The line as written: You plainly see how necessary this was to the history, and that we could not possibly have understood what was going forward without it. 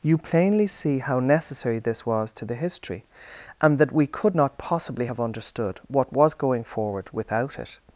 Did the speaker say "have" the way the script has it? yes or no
yes